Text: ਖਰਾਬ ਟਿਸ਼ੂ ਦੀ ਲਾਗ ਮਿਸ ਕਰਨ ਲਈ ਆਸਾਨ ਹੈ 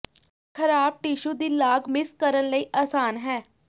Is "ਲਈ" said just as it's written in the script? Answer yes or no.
yes